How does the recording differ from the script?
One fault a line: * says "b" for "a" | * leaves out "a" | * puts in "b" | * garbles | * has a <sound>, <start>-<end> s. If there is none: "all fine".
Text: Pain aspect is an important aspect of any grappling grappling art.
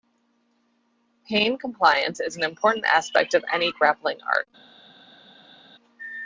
* says "compliance" for "aspect"
* leaves out "grappling"